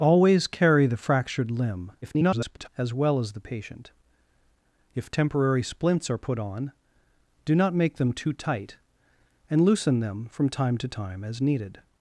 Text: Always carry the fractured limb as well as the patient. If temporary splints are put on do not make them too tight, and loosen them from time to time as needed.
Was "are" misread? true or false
false